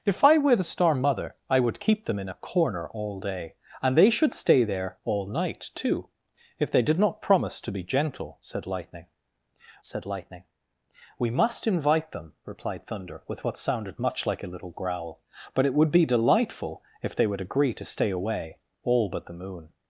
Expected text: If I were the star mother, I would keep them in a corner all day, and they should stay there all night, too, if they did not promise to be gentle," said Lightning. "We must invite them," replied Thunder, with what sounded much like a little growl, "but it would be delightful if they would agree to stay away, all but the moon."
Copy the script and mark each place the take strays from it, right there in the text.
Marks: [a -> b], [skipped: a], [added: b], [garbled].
If I were the star mother, I would keep them in a corner all day, and they should stay there all night, too, if they did not promise to be gentle," said Lightning. [added: said Lightning] "We must invite them," replied Thunder, with what sounded much like a little growl, "but it would be delightful if they would agree to stay away, all but the moon."